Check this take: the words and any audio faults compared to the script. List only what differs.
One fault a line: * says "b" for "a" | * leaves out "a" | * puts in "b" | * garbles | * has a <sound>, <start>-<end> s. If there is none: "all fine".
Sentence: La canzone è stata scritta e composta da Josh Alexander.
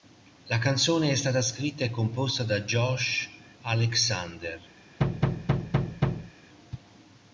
* has a thud, 5.0-6.3 s